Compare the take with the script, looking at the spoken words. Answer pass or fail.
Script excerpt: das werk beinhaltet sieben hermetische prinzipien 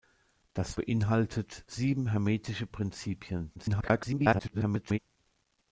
fail